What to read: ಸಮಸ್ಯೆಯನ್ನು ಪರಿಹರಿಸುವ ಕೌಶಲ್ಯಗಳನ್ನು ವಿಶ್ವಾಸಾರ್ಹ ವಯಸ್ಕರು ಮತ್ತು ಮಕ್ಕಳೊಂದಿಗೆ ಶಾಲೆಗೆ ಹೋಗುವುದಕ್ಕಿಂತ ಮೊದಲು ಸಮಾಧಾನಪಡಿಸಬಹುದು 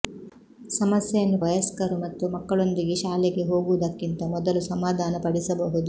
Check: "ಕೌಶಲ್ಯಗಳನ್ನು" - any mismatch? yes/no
yes